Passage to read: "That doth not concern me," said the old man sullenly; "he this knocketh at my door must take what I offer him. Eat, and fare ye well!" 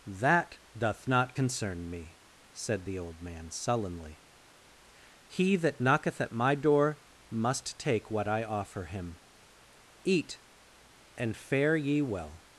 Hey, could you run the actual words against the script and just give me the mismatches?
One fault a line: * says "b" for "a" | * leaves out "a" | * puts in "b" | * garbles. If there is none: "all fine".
* says "that" for "this"